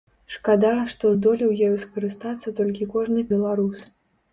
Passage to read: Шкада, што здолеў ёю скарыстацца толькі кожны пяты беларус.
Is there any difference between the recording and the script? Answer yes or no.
yes